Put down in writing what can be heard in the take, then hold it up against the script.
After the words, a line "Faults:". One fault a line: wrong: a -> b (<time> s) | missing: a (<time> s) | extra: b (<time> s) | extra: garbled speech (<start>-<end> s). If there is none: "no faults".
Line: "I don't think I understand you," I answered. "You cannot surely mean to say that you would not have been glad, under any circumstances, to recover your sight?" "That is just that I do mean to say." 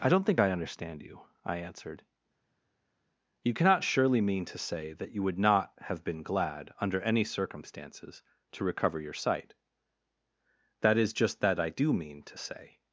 "I don't think I understand you," I answered. "You cannot surely mean to say that you would not have been glad, under any circumstances, to recover your sight?" "That is just that I do mean to say."
Faults:
no faults